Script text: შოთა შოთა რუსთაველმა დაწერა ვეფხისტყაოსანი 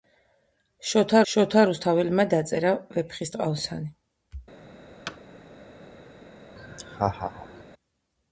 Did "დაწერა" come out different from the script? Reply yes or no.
no